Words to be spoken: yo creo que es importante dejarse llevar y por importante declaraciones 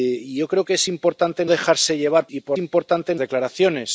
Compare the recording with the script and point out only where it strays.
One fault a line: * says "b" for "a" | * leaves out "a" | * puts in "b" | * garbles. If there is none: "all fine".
all fine